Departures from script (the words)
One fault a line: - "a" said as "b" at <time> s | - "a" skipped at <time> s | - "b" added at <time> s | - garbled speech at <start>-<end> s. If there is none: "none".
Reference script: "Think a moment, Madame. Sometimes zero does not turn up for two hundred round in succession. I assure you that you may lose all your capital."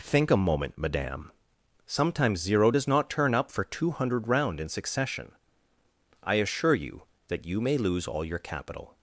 none